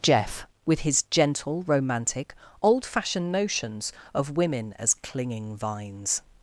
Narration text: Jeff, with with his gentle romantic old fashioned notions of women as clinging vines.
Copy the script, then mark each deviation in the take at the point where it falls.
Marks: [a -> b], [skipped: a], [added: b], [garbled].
Jeff, with [skipped: with] his gentle romantic old fashioned notions of women as clinging vines.